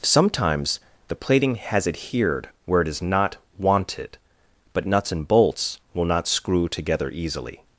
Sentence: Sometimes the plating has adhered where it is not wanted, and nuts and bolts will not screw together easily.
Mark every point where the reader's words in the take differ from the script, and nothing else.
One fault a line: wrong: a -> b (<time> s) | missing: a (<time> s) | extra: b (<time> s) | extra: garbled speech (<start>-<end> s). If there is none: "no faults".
wrong: and -> but (4.7 s)